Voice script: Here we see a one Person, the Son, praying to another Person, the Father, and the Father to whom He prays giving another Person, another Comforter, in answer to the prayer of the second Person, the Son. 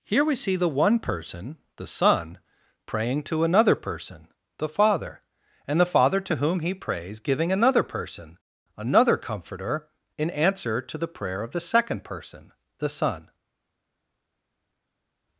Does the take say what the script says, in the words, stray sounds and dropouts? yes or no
no